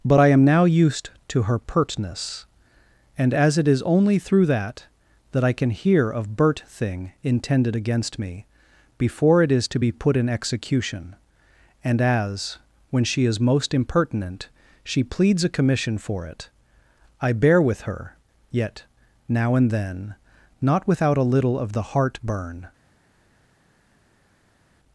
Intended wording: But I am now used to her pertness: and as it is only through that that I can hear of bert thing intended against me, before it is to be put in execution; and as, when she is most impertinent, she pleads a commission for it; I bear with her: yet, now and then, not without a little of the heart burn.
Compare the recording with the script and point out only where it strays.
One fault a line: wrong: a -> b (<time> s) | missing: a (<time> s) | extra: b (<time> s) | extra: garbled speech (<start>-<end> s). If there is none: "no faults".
no faults